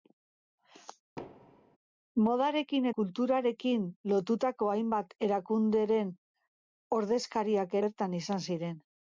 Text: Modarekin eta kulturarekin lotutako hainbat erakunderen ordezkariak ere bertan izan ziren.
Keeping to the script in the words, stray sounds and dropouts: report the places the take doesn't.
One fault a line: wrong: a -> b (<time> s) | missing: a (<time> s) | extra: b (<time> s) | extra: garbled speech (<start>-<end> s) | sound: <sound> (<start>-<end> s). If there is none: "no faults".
sound: thud (1.2-1.8 s)
missing: eta (2.9 s)
missing: ere (7.8 s)